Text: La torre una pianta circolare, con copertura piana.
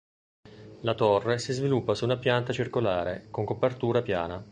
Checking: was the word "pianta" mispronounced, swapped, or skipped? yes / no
no